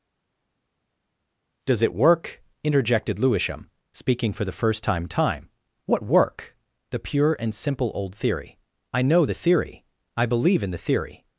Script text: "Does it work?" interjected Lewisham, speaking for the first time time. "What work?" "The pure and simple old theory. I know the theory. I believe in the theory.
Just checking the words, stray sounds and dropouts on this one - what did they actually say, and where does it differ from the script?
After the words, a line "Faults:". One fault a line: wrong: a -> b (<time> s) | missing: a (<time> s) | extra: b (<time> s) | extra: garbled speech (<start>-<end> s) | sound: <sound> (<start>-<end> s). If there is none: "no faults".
"Does it work?" interjected Lewisham, speaking for the first time time. "What work?" "The pure and simple old theory. I know the theory. I believe in the theory.
Faults:
no faults